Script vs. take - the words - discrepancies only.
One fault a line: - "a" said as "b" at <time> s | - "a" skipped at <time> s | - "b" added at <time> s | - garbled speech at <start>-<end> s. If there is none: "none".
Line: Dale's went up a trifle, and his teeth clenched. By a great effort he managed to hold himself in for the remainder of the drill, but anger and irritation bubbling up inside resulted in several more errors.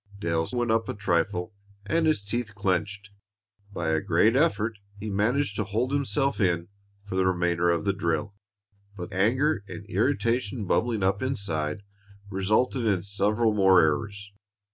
none